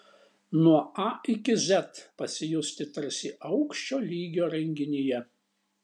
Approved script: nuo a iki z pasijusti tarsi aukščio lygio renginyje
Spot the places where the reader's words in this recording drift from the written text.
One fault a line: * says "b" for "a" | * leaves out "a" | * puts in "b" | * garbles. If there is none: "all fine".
all fine